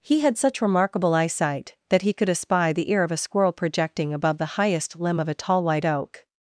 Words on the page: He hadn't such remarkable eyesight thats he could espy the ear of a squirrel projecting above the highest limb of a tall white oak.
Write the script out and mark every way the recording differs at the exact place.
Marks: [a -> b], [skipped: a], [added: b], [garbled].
He [hadn't -> had] such remarkable eyesight [thats -> that] he could espy the ear of a squirrel projecting above the highest limb of a tall white oak.